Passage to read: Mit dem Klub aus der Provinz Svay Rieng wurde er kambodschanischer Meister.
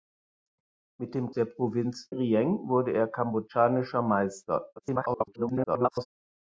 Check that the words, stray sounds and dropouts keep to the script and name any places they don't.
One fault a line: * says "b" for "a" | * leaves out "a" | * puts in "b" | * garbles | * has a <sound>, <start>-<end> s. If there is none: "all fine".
* leaves out "Klub aus"
* leaves out "Svay"
* garbles